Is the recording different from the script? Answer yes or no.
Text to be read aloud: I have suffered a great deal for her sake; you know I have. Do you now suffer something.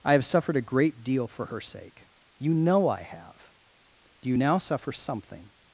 no